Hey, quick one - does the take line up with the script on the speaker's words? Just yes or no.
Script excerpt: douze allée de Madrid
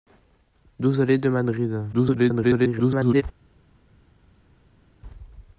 no